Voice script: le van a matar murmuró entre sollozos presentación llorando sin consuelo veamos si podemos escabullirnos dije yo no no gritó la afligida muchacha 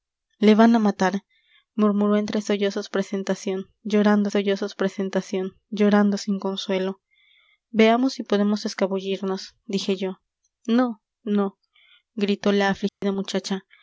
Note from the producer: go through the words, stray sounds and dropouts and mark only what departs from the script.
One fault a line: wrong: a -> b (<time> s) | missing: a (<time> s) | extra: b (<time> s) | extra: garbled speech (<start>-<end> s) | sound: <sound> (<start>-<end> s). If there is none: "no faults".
extra: sollozos presentación llorando (4.3 s)
sound: dropout (12.9-13.0 s)